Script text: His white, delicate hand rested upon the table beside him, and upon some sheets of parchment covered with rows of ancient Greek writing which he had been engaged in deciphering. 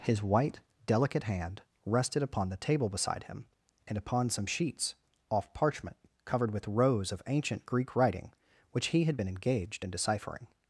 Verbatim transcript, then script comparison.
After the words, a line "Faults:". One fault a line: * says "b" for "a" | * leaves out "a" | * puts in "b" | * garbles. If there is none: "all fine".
His white, delicate hand rested upon the table beside him, and upon some sheets off parchment covered with rows of ancient Greek writing which he had been engaged in deciphering.
Faults:
* says "off" for "of"